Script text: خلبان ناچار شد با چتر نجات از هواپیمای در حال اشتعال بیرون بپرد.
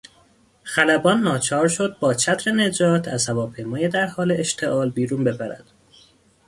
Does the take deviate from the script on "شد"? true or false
false